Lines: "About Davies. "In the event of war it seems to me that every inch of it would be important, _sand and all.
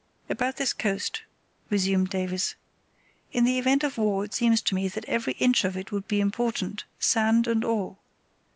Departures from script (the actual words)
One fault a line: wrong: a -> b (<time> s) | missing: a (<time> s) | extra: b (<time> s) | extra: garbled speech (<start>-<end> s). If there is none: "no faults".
extra: this coast resumed (0.6 s)